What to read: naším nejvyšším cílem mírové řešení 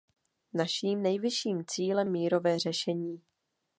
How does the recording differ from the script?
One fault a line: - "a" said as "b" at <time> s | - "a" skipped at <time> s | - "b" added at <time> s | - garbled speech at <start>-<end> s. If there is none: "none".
none